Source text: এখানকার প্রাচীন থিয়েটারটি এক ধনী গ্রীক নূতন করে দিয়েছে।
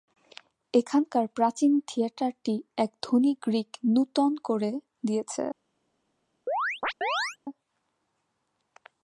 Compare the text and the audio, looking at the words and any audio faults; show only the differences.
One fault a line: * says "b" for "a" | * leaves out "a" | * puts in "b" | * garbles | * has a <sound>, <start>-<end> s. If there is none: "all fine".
* has a chirp, 6.5-7.4 s